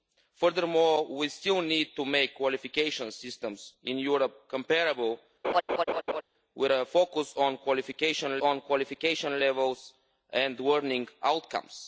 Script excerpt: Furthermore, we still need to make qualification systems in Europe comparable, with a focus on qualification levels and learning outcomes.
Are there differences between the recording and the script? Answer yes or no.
yes